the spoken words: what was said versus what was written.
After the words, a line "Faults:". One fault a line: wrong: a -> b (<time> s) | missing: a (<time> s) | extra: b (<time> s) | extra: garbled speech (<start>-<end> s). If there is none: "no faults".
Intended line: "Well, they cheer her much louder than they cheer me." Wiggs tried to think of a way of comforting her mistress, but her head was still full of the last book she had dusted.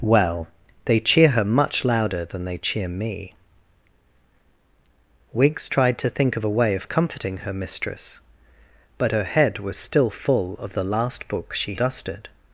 "Well, they cheer her much louder than they cheer me." Wiggs tried to think of a way of comforting her mistress, but her head was still full of the last book she dusted.
Faults:
missing: had (11.8 s)